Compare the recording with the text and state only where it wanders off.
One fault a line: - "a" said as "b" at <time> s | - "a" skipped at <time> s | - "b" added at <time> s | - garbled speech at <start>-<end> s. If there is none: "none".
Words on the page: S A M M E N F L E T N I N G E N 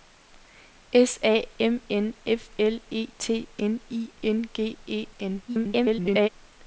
- "M E" skipped at 1.8 s
- garbled speech at 5.5-6.3 s